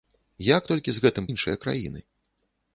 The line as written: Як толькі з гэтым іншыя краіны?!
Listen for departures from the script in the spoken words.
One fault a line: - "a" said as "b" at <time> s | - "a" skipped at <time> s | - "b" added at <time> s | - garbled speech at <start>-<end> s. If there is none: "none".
none